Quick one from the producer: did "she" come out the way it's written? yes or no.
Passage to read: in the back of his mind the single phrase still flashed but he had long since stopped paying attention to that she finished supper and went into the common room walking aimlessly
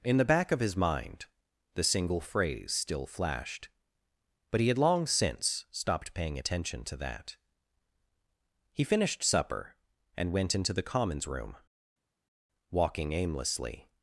no